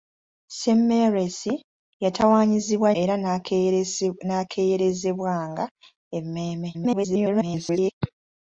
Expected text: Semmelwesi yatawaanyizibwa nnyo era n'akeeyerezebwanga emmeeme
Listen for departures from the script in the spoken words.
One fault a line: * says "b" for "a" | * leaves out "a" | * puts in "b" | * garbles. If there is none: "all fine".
* leaves out "nnyo"
* garbles